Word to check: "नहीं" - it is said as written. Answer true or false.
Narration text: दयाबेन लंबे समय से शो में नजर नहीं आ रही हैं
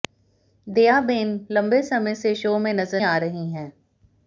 false